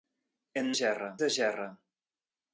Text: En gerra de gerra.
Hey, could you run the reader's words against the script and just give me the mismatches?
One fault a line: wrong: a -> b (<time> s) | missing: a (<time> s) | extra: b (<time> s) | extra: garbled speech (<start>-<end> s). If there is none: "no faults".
no faults